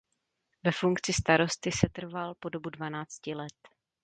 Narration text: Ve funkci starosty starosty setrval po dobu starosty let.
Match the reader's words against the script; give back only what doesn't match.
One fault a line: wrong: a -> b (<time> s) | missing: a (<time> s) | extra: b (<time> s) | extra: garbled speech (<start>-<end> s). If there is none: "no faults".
missing: starosty (1.7 s)
wrong: starosty -> dvanácti (2.7 s)